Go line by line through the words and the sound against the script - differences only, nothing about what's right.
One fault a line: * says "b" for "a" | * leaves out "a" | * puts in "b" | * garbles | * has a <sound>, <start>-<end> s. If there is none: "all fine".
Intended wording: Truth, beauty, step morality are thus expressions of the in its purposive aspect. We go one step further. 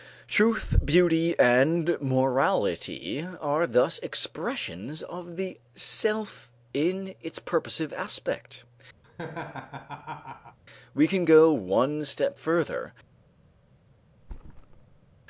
* says "and" for "step"
* puts in "self"
* has a laugh, 9.0-10.6 s
* puts in "can"
* has a thud, 14.2-15.1 s